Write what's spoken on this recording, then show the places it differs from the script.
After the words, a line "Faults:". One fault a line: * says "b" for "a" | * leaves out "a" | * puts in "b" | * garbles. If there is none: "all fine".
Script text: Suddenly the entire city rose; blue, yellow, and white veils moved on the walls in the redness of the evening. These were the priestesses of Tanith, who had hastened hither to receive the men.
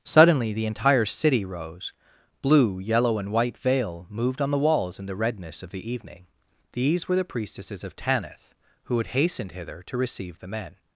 Suddenly the entire city rose; blue, yellow, and white veil moved on the walls in the redness of the evening. These were the priestesses of Tanith, who had hastened hither to receive the men.
Faults:
* says "veil" for "veils"